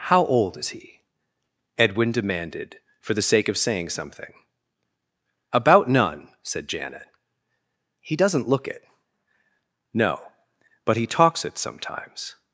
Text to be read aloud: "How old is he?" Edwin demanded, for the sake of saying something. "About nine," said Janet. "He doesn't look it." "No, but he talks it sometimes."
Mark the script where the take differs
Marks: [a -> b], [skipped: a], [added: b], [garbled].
"How old is he?" Edwin demanded, for the sake of saying something. "About [nine," -> none] said Janet. "He doesn't look it." "No, but he talks it sometimes."